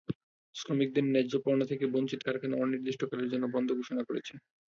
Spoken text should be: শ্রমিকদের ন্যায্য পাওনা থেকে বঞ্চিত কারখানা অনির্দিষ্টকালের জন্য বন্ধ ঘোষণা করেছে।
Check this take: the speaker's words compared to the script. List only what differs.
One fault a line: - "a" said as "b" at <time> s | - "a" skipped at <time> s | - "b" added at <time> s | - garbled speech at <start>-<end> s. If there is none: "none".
none